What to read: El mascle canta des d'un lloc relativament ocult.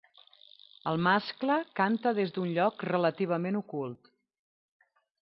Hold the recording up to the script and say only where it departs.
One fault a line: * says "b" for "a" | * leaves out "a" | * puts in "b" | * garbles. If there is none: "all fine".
all fine